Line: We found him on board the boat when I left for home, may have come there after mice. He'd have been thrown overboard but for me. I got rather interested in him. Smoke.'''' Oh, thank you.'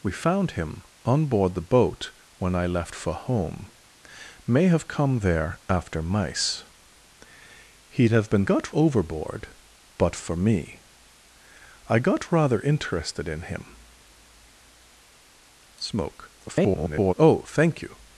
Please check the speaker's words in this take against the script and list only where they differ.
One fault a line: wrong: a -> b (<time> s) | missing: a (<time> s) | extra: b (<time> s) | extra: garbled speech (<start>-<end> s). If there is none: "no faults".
wrong: thrown -> got (8.4 s)
extra: garbled speech (16.5-17.1 s)